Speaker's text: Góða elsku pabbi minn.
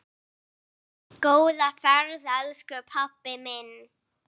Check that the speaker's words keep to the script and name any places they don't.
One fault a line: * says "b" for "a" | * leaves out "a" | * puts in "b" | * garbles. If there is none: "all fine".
* puts in "ferð"